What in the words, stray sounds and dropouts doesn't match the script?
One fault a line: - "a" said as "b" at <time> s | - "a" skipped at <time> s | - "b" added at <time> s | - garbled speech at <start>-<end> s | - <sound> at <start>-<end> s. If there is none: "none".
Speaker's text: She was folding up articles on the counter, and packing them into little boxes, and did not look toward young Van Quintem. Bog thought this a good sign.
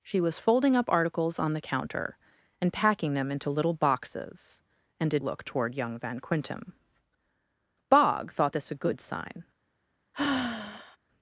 - "not" skipped at 5.2 s
- sigh at 10.1-11.0 s